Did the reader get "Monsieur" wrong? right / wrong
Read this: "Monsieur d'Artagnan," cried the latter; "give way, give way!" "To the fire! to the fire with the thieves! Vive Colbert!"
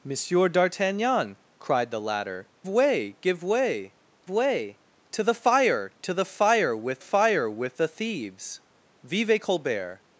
right